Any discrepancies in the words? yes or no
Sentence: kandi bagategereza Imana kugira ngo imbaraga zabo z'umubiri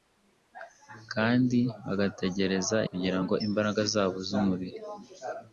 yes